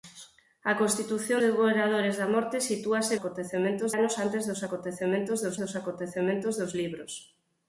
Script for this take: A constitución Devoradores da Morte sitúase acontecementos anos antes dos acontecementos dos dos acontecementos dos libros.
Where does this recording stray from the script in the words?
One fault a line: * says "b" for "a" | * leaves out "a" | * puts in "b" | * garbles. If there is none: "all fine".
all fine